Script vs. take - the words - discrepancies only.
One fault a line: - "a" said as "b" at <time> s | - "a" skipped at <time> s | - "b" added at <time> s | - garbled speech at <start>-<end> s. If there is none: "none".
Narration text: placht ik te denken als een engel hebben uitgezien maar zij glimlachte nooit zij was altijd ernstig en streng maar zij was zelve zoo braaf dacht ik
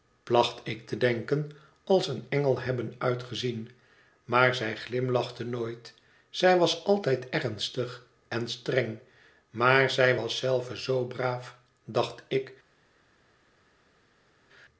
none